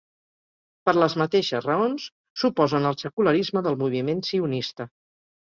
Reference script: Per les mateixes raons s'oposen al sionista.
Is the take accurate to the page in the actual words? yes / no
no